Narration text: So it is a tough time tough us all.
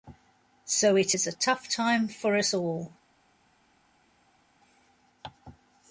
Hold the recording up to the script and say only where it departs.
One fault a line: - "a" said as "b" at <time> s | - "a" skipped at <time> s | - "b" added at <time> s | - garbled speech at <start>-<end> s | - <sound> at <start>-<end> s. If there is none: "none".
- "tough" said as "for" at 2.1 s